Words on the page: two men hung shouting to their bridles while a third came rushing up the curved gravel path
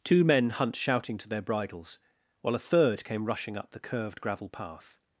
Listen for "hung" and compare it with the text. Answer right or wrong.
wrong